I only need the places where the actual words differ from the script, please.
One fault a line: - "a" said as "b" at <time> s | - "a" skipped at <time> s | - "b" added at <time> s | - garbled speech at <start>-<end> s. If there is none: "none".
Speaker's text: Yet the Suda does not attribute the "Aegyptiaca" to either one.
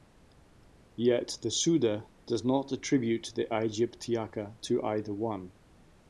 none